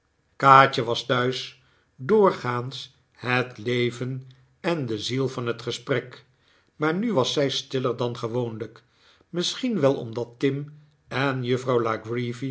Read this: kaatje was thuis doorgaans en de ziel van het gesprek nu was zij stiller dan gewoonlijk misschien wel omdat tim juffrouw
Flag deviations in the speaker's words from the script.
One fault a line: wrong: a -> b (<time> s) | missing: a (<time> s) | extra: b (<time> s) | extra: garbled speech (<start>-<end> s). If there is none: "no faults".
extra: het leven (3.1 s)
extra: maar (6.8 s)
extra: en (11.1 s)